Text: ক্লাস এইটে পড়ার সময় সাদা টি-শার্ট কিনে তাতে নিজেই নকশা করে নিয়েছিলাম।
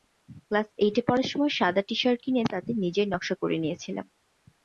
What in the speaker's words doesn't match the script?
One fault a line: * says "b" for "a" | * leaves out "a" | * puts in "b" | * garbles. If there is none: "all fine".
all fine